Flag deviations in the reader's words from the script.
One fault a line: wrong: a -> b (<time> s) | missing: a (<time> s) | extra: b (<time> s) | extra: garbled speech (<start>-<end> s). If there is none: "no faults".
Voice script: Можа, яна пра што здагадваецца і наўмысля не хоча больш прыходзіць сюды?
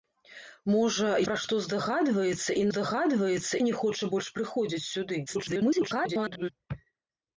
missing: яна (1.1 s)
wrong: наўмысля -> здагадваецца (2.7 s)
extra: garbled speech (5.3-6.5 s)